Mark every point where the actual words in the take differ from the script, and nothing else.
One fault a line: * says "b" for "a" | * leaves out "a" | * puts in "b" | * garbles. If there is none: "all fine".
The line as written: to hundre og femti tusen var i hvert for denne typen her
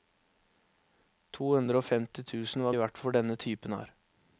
all fine